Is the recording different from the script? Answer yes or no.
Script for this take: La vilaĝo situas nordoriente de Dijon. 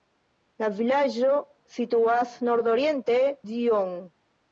yes